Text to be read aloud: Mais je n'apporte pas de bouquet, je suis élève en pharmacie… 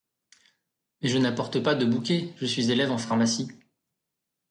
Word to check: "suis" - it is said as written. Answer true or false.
true